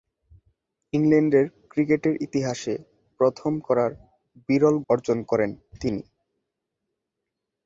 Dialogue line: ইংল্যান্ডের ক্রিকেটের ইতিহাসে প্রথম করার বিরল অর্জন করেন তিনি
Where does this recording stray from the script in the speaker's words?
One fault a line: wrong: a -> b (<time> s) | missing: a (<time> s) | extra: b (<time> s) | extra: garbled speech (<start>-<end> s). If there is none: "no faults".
no faults